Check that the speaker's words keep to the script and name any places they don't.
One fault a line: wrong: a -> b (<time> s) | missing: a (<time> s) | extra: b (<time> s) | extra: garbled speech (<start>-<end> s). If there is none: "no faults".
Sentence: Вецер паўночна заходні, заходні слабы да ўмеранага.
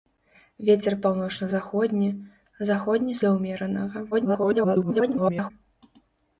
missing: слабы (3.2 s)
extra: garbled speech (4.1-5.5 s)